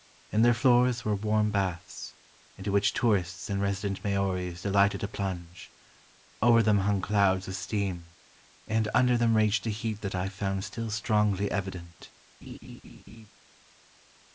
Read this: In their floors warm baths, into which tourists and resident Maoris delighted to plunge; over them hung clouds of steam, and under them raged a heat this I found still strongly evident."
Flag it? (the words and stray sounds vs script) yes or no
yes